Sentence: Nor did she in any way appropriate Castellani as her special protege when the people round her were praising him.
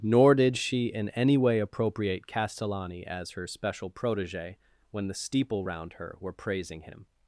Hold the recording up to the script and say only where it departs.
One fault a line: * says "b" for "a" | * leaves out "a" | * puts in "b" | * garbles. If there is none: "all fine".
* says "steeple" for "people"